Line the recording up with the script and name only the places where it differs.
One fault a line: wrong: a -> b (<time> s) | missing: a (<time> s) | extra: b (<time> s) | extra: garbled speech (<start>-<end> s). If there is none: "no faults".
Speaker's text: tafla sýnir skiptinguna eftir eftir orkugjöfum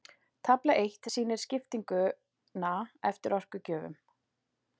extra: eitt (0.8 s)
missing: eftir (3.4 s)